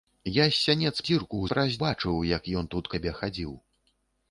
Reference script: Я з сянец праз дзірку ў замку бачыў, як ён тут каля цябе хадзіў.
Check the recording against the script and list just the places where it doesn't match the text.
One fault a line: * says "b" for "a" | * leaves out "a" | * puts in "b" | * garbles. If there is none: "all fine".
* leaves out "праз"
* says "праз" for "замку"
* leaves out "каля"